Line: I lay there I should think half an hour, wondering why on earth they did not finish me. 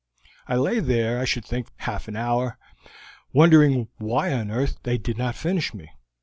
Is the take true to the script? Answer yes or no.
yes